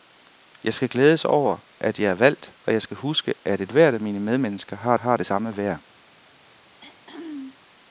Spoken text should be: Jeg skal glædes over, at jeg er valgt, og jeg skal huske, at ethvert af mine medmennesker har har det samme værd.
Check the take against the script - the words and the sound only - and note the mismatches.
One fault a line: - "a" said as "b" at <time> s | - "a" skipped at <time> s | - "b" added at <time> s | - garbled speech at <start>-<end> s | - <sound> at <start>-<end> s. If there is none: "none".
- throat clearing at 6.6-7.6 s